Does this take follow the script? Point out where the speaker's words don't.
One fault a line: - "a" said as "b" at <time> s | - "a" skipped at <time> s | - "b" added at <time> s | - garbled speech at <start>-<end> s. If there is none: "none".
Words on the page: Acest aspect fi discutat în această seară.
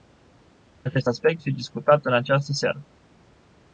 none